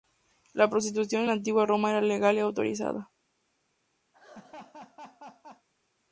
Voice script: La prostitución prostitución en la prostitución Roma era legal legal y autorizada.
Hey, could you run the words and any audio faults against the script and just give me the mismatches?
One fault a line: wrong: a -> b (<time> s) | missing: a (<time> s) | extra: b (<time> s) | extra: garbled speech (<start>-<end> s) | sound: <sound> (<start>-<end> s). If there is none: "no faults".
missing: prostitución (1.2 s)
wrong: prostitución -> antigua (1.3 s)
missing: legal (2.4 s)
sound: laugh (4.1-5.7 s)